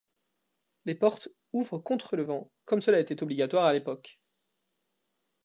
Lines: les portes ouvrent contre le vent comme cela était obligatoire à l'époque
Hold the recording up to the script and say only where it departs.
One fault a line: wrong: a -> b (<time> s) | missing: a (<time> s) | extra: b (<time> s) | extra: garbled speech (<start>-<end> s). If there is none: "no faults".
no faults